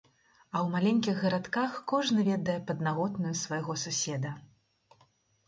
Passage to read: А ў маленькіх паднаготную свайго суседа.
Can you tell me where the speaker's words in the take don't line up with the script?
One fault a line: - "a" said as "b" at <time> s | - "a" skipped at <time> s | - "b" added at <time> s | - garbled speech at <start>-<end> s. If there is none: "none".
- "гарадках кожны ведае" added at 1.2 s